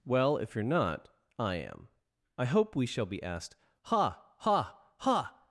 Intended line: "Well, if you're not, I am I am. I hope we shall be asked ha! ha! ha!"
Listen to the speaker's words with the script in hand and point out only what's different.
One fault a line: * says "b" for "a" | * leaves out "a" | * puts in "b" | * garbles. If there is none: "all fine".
* leaves out "am I"